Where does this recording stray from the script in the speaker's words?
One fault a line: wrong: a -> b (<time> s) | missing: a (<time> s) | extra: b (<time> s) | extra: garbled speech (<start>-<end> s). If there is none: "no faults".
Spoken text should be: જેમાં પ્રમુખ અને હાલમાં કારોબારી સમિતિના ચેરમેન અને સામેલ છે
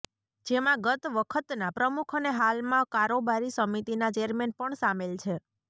extra: ગત વખતના (0.8 s)
wrong: અને -> પણ (4.6 s)